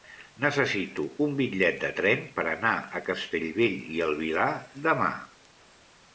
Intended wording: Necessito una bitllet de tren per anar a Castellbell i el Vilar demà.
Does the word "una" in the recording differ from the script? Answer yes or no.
yes